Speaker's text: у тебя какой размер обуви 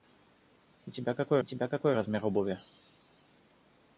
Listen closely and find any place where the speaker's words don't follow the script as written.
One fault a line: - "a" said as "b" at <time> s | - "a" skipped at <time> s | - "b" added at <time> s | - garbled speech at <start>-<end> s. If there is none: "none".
- "тебя какой" added at 1.4 s